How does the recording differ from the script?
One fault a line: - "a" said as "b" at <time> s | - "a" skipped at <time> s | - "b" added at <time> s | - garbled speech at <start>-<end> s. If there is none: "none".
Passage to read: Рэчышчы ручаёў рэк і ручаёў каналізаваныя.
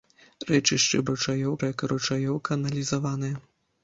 none